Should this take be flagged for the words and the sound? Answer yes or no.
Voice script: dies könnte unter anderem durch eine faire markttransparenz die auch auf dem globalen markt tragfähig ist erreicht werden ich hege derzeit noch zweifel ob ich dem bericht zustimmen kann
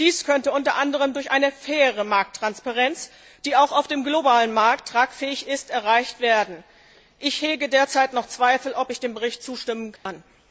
yes